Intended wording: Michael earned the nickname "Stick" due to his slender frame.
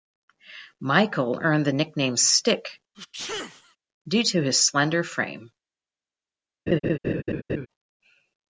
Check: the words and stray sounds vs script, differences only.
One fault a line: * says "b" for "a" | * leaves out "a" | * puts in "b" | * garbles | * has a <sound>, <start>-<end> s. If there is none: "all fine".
* has a sneeze, 2.9-3.8 s
* has a laugh, 6.7-7.7 s